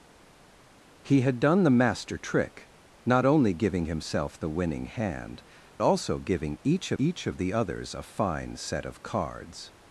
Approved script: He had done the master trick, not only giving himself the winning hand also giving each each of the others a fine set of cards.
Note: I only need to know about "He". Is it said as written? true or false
true